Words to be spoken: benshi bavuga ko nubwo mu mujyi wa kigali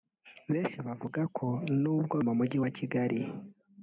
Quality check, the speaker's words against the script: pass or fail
pass